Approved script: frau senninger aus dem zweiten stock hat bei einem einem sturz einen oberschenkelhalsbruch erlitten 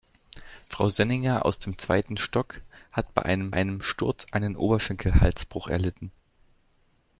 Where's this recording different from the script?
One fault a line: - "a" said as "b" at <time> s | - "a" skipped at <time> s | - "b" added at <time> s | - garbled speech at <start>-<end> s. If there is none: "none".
none